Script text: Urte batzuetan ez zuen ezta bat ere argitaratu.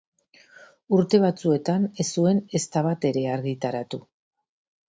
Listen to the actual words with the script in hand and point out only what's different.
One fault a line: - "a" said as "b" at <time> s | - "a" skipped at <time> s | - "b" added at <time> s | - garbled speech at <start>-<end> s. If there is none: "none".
none